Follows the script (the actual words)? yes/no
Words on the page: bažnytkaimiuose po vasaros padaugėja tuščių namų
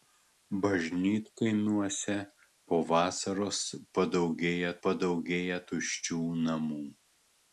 no